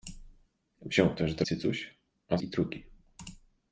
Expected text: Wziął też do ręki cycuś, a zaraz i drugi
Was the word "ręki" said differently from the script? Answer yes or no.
yes